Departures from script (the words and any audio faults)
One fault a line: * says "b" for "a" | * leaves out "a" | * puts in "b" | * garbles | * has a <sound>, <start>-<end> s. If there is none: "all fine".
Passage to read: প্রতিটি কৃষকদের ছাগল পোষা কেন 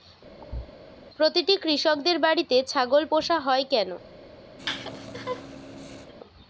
* has a thud, 0.4-0.7 s
* puts in "বাড়িতে"
* puts in "হয়"
* has a laugh, 4.6-6.1 s